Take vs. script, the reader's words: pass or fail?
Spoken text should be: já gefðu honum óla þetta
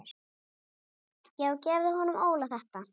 pass